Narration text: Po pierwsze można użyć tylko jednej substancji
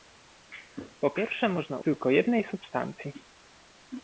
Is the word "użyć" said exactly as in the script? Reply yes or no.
no